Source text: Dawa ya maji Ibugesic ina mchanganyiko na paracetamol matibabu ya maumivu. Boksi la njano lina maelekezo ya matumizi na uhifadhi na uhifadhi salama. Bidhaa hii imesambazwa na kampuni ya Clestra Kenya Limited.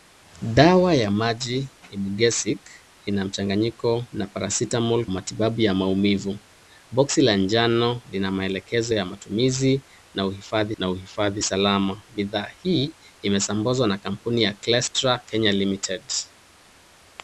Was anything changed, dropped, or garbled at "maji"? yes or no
no